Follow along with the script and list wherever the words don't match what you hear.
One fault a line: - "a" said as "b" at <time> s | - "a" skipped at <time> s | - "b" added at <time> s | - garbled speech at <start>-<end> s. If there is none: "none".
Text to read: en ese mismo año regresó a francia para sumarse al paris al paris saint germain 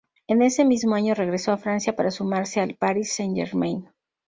- "al paris" skipped at 3.1 s